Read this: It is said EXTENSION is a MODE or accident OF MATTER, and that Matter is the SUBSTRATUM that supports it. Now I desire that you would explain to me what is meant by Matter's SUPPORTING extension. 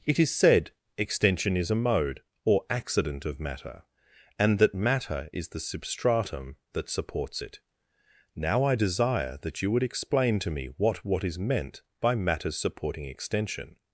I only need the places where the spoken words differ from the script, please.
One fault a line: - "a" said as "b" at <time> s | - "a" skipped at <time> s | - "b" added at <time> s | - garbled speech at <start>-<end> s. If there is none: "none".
- "what" added at 11.0 s